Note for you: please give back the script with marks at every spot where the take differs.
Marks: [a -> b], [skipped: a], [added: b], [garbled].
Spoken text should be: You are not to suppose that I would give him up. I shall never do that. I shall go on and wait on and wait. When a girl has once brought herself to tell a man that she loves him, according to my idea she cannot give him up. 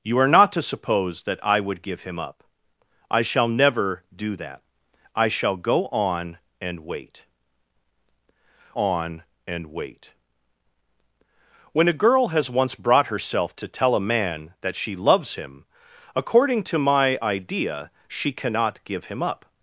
You are not to suppose that I would give him up. I shall never do that. I shall go on and wait on and wait. When a girl has once brought herself to tell a man that she loves him, according to my idea she cannot give him up.